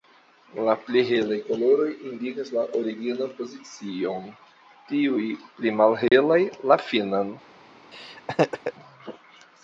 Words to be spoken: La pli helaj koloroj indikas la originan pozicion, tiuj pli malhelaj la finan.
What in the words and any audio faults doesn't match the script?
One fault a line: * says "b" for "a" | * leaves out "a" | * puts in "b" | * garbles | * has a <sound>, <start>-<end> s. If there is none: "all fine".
* has a dropout, 6.1-6.1 s
* has a laugh, 7.9-8.7 s